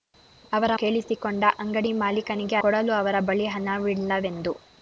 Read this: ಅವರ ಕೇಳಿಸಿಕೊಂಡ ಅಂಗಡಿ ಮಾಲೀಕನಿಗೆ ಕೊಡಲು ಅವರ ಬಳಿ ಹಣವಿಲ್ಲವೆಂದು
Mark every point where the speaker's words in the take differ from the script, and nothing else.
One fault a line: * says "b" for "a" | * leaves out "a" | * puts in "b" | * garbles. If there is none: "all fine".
all fine